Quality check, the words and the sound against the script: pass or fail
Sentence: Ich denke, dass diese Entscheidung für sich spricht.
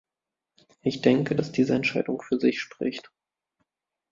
pass